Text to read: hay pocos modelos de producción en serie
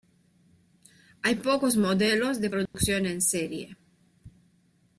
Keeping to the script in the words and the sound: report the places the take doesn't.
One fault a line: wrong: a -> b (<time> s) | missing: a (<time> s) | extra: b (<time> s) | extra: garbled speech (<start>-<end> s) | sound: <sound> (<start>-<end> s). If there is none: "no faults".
sound: dropout (2.7-2.7 s)